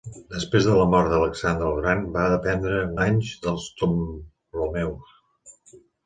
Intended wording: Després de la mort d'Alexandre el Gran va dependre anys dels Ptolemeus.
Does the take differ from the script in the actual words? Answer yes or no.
no